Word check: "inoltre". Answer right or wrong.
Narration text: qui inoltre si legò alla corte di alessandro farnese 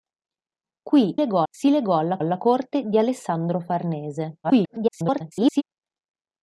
wrong